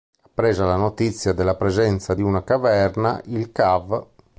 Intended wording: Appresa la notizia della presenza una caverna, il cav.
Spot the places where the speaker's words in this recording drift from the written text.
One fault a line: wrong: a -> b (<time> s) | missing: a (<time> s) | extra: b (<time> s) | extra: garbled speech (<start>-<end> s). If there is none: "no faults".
extra: di (2.1 s)